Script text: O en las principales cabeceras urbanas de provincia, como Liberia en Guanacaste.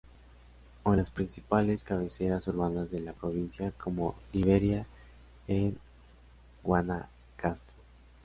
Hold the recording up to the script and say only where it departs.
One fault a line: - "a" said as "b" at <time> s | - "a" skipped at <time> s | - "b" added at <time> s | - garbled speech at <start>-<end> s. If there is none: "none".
- "la" added at 3.0 s